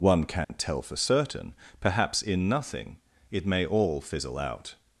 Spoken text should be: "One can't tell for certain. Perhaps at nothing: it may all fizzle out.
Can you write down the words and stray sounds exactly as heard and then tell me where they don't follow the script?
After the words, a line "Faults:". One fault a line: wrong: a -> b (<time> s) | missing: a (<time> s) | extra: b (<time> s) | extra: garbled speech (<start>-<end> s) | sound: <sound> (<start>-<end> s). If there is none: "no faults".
"One can't tell for certain. Perhaps in nothing: it may all fizzle out.
Faults:
sound: dropout (0.4-0.5 s)
wrong: at -> in (2.2 s)